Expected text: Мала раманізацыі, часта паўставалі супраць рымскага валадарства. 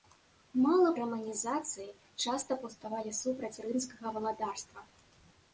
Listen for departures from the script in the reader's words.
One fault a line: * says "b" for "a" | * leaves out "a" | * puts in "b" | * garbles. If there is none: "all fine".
all fine